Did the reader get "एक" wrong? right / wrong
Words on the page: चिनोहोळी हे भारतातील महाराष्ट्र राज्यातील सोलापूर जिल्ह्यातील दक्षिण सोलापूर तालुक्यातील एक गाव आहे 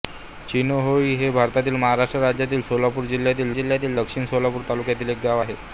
right